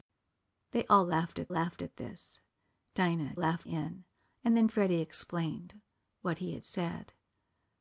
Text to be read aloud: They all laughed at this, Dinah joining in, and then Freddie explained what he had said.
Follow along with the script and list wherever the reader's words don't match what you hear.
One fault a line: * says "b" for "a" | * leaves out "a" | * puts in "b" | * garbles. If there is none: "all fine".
* puts in "laughed at"
* says "laughed" for "joining"